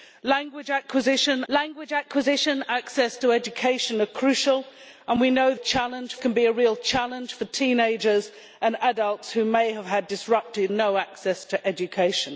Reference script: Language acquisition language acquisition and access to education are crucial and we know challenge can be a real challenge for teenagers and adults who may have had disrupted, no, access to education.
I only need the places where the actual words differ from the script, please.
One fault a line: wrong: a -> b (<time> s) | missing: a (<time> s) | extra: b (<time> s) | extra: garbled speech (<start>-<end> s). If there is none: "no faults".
no faults